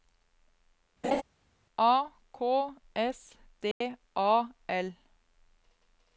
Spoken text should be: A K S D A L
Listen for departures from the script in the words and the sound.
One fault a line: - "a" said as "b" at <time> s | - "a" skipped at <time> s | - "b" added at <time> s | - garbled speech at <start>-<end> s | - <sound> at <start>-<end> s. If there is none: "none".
- laugh at 1.0-1.2 s
- dropout at 3.7-3.8 s